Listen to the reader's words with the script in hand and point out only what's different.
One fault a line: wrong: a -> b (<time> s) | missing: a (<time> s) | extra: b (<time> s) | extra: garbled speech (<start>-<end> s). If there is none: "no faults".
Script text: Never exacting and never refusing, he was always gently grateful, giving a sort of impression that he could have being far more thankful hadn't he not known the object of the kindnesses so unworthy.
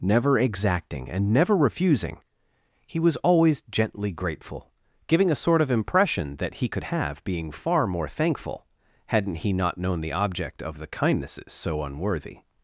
no faults